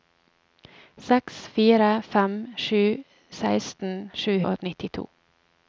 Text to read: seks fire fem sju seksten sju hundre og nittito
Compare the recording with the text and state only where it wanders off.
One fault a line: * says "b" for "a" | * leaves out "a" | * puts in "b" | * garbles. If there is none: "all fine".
* leaves out "hundre"